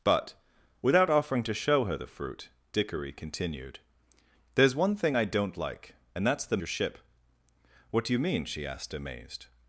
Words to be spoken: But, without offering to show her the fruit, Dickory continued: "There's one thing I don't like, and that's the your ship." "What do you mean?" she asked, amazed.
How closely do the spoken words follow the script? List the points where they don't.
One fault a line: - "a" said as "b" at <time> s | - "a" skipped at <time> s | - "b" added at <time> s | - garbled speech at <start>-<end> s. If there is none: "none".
none